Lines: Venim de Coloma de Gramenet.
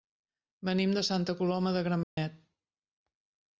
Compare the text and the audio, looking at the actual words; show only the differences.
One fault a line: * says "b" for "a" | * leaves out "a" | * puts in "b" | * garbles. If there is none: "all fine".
* puts in "Santa"